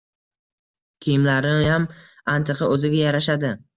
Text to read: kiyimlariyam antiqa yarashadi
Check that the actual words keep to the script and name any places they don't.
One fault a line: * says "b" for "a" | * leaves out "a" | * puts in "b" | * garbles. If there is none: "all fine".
* puts in "o`ziga"